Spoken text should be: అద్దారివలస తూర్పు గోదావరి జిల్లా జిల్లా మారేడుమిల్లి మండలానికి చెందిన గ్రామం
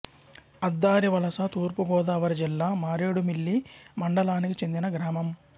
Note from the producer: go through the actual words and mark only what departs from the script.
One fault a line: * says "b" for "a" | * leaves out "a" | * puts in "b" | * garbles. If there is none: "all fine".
* leaves out "జిల్లా"